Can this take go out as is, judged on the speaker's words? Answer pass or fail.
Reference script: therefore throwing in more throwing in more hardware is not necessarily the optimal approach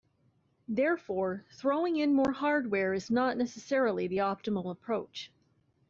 fail